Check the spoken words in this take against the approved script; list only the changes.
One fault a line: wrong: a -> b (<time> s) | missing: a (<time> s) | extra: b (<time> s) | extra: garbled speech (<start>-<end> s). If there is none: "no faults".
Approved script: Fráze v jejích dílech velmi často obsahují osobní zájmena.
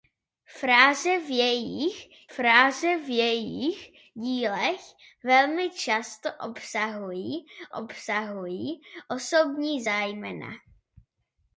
extra: fráze v jejích (2.3 s)
extra: obsahují (7.7 s)